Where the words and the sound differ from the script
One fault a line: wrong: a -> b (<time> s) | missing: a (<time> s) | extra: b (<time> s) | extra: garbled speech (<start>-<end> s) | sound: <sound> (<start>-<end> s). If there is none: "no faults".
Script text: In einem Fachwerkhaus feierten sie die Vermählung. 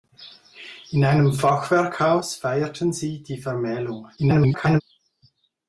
extra: garbled speech (4.2-4.8 s)